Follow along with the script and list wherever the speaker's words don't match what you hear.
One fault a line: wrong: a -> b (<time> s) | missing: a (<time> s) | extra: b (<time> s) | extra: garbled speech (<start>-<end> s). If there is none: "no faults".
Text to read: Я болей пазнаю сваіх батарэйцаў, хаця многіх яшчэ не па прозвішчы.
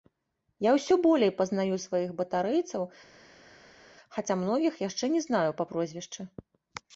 extra: ўсё (0.8 s)
extra: знаю (5.3 s)